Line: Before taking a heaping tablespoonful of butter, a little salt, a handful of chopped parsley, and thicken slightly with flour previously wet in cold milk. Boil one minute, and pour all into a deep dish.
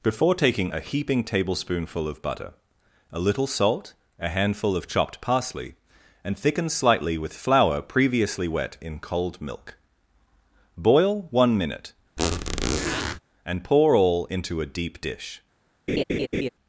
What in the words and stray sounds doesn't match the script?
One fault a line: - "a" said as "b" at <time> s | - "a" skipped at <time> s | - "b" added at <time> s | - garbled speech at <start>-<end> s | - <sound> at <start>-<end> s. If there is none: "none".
- squeak at 12.2-13.2 s
- laugh at 15.9-16.5 s